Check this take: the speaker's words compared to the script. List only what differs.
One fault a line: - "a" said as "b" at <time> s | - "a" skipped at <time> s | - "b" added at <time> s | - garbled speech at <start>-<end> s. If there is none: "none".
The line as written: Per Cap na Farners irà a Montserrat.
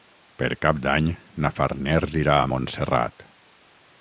- "d'Any" added at 0.8 s